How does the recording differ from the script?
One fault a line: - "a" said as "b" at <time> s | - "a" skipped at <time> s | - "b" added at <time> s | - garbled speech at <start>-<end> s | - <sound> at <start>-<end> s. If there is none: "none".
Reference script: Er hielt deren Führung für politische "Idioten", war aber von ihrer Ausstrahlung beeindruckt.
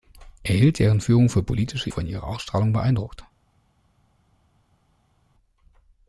- "Idioten war aber" skipped at 1.9 s